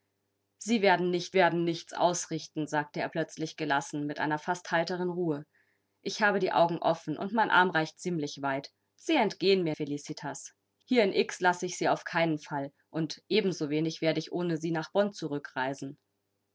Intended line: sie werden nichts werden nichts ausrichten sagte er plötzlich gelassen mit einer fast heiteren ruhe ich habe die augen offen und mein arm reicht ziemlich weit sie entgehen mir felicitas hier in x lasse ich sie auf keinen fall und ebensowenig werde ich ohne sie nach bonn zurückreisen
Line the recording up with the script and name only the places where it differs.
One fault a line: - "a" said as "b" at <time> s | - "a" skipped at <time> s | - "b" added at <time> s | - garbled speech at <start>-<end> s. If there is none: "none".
none